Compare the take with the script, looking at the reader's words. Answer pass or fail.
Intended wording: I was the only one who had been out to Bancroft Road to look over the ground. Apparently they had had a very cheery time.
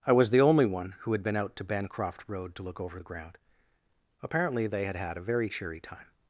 pass